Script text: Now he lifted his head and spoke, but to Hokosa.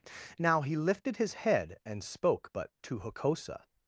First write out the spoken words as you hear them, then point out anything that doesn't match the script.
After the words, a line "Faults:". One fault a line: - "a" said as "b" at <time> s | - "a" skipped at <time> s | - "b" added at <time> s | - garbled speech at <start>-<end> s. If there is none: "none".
Now he lifted his head and spoke, but to Hokosa.
Faults:
none